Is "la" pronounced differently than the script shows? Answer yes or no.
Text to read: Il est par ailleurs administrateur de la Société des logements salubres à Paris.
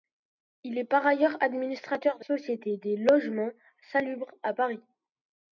yes